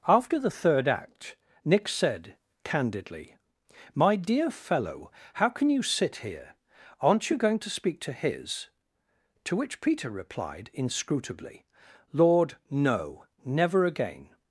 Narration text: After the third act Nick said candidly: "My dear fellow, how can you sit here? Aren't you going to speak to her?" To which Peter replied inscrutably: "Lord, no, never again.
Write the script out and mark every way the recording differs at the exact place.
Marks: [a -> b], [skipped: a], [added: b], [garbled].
After the third act Nick said candidly: "My dear fellow, how can you sit here? Aren't you going to speak to [her?" -> his] To which Peter replied inscrutably: "Lord, no, never again.